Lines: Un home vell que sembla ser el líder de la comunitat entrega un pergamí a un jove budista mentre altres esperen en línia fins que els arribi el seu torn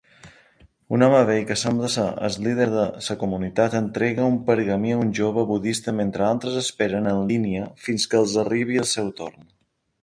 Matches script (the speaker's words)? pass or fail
pass